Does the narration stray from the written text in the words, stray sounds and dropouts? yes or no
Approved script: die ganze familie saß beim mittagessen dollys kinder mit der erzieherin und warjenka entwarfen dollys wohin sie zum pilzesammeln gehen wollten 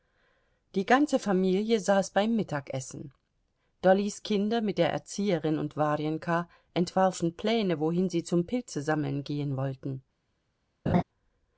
yes